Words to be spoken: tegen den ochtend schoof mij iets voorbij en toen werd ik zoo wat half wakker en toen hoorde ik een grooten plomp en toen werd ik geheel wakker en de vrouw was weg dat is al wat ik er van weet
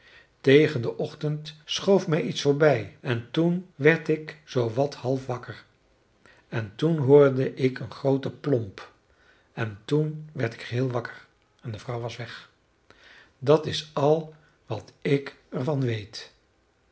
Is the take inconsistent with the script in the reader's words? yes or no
no